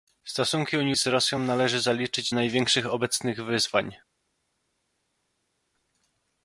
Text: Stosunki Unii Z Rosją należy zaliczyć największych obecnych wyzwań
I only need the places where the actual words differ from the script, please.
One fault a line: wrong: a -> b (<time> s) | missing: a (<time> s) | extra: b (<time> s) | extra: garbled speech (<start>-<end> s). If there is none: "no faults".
no faults